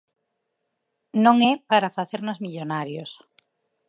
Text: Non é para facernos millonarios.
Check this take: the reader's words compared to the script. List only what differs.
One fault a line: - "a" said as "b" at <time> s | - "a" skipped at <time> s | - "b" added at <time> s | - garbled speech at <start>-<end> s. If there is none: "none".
none